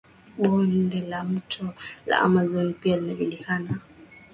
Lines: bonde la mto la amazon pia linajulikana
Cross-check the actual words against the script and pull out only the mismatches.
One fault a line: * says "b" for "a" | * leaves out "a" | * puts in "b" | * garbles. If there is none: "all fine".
all fine